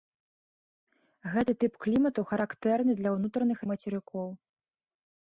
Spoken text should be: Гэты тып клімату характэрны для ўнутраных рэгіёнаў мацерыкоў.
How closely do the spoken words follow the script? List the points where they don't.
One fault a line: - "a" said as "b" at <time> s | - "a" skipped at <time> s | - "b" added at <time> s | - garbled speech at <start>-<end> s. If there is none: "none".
- "рэгіёнаў" skipped at 3.6 s